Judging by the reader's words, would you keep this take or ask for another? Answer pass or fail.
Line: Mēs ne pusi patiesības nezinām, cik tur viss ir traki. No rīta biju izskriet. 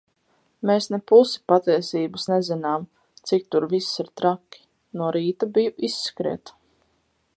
pass